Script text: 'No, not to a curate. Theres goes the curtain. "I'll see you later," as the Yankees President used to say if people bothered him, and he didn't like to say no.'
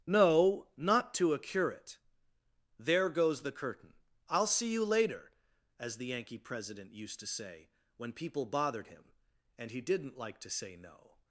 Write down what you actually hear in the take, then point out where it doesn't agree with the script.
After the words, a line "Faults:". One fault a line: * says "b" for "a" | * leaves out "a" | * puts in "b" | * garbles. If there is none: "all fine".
'No, not to a curate. There goes the curtain. "I'll see you later," as the Yankee President used to say when people bothered him, and he didn't like to say no.'
Faults:
* says "There" for "Theres"
* says "Yankee" for "Yankees"
* says "when" for "if"